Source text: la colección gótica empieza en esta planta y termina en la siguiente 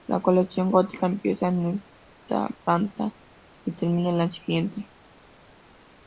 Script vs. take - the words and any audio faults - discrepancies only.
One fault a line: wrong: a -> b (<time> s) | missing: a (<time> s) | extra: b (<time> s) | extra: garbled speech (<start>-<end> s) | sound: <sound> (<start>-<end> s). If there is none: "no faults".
no faults